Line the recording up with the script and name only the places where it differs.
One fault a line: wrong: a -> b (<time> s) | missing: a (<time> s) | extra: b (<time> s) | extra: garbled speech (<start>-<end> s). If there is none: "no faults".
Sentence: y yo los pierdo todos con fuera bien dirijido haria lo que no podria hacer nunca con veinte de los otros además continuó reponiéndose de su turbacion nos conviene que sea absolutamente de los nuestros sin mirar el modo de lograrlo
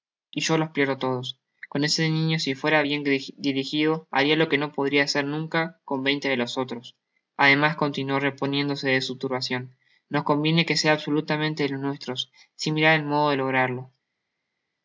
extra: ese niño si (1.8 s)